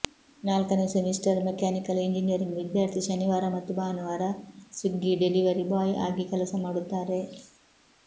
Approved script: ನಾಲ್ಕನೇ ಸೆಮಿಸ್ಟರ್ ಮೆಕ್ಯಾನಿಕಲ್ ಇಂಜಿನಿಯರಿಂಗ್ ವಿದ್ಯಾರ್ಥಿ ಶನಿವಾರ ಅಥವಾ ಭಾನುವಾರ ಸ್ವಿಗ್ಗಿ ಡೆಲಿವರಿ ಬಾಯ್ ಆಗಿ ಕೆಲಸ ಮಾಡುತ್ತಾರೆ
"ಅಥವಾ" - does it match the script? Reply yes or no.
no